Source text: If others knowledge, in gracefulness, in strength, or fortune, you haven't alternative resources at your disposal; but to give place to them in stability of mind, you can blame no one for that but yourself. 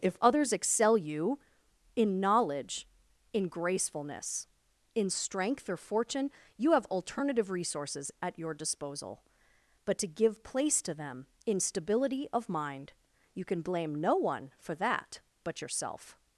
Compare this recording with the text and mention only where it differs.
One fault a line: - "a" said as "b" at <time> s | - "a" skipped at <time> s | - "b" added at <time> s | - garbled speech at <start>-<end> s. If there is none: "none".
- "excel you in" added at 0.5 s
- "haven't" said as "have" at 6.7 s